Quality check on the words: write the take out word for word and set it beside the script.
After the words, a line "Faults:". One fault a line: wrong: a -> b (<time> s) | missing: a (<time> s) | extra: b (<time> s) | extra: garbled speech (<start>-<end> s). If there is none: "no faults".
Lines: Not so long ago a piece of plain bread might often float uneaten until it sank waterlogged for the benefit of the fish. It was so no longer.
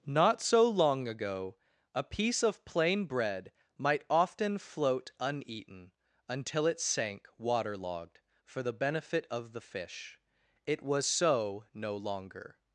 Not so long ago a piece of plain bread might often float uneaten until it sank waterlogged for the benefit of the fish. It was so no longer.
Faults:
no faults